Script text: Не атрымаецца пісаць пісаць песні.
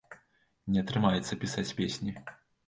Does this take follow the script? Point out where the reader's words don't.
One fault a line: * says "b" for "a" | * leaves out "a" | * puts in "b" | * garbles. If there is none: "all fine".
* leaves out "пісаць"